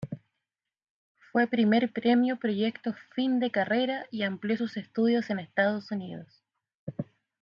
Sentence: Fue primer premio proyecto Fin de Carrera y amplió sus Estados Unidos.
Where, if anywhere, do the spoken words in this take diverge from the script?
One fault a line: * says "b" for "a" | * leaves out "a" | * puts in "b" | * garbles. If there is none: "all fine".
* puts in "estudios en"